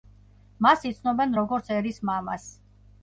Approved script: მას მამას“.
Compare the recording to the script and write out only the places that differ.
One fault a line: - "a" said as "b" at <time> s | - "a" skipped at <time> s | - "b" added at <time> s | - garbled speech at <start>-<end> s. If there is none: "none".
- "იცნობენ როგორც ერის" added at 0.9 s